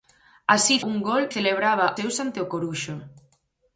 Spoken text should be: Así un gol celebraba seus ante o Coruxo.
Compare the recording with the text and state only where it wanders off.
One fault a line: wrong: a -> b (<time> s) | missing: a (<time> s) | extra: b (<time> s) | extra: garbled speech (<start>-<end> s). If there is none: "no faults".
no faults